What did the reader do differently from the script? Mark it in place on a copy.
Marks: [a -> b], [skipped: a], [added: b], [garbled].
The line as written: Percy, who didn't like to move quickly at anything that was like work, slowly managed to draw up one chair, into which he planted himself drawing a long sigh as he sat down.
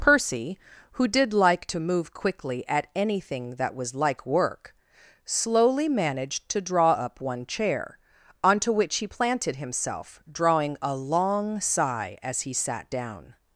Percy, who [didn't -> did] like to move quickly at anything that was like work, slowly managed to draw up one chair, [into -> onto] which he planted himself drawing a long sigh as he sat down.